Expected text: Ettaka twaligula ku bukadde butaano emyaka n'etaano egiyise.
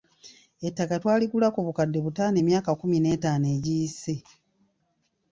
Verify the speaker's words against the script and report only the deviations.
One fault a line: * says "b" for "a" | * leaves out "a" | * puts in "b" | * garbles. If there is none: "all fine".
* puts in "kkumi"